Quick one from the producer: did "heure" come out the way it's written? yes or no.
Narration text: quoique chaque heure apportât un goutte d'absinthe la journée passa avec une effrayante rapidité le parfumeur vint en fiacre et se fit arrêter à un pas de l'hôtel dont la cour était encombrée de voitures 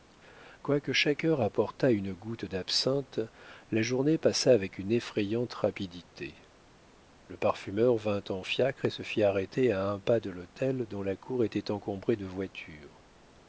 yes